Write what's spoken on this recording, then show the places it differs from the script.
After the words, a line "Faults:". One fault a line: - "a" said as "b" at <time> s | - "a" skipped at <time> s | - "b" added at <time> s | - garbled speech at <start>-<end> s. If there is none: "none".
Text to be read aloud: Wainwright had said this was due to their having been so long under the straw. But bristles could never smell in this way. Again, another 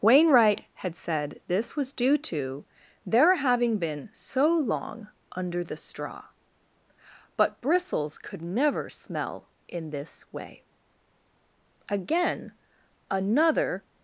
Wainwright had said this was due to their having been so long under the straw. But bristles could never smell in this way. Again, another
Faults:
none